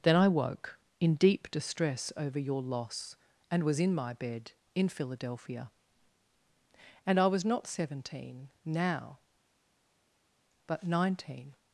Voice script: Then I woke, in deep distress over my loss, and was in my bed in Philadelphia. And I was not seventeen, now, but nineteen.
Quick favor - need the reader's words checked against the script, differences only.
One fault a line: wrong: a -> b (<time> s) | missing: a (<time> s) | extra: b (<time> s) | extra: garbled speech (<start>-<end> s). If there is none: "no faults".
wrong: my -> your (2.4 s)